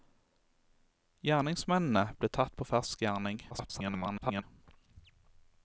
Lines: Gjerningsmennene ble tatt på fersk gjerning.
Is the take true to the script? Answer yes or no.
no